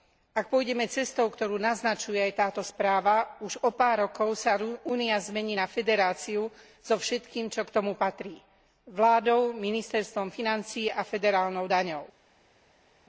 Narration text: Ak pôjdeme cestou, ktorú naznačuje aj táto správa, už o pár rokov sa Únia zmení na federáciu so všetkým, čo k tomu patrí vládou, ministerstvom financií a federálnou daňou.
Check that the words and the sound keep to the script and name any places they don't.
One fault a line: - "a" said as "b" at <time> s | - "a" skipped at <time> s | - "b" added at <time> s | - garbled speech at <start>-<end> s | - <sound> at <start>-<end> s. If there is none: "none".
none